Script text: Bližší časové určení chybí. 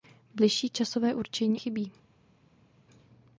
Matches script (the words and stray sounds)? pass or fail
pass